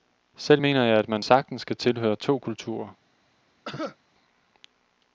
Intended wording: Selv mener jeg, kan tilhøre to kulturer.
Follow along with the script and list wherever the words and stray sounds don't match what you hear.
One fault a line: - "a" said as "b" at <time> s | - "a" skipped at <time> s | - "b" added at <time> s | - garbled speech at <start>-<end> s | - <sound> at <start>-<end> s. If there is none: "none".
- "at man sagtens" added at 1.0 s
- cough at 3.6-4.0 s